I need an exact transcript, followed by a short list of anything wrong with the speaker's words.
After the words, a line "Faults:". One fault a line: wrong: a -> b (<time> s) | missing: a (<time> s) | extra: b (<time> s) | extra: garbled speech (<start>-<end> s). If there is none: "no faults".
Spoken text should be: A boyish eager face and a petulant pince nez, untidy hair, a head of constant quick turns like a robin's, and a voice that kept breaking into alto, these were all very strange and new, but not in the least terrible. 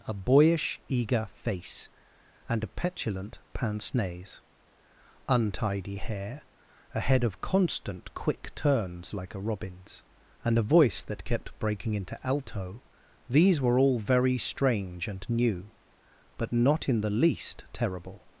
A boyish eager face and a petulant pince nez, untidy hair, a head of constant quick turns like a robin's, and a voice that kept breaking into alto, these were all very strange and new, but not in the least terrible.
Faults:
no faults